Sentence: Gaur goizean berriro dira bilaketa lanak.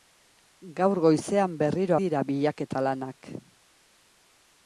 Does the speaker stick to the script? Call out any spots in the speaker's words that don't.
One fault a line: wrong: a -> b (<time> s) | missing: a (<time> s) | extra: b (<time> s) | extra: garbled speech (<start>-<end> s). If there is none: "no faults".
no faults